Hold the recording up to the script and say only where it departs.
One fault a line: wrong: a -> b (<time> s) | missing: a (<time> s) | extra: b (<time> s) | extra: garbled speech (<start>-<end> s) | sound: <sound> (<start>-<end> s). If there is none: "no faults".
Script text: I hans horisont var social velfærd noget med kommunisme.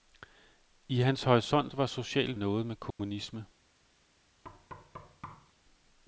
missing: velfærd (2.4 s)
sound: dropout (2.9-3.0 s)
sound: thud (4.4-5.5 s)